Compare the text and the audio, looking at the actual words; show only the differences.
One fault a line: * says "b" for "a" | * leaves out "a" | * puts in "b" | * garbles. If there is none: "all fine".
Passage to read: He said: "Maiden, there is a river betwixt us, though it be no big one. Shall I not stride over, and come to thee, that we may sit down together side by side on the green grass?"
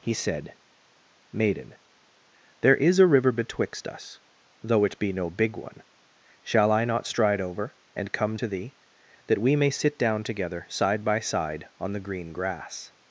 all fine